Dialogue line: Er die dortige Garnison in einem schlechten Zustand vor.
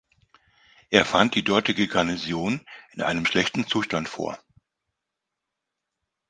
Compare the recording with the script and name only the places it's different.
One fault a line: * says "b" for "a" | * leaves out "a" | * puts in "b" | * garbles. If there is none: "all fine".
* puts in "fand"